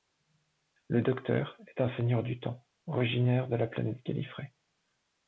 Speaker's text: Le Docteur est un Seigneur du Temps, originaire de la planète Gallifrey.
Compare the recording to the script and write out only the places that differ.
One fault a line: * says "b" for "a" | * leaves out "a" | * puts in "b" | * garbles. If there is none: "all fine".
all fine